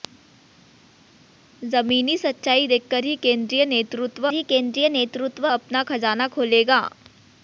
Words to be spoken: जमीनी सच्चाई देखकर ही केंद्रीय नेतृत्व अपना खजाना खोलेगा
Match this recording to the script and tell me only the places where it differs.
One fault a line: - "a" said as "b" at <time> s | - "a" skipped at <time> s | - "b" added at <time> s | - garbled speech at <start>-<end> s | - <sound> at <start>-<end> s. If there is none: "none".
- "ही केंद्रीय नेतृत्व" added at 4.3 s